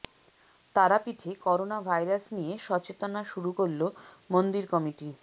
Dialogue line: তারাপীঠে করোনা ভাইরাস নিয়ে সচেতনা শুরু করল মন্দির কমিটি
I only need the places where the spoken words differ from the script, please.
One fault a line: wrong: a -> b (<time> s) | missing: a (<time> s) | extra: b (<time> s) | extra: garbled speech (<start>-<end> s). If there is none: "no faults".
no faults